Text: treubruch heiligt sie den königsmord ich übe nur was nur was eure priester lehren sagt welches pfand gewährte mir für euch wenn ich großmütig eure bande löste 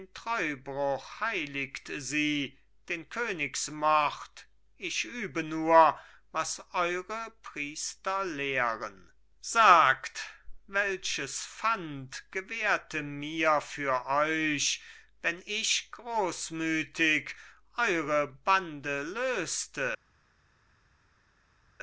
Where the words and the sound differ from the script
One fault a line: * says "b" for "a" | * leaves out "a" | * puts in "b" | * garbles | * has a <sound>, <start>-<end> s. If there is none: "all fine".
* leaves out "nur was"